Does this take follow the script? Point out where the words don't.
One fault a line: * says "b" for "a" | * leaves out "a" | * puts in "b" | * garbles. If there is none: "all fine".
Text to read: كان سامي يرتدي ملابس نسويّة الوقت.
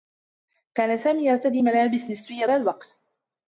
all fine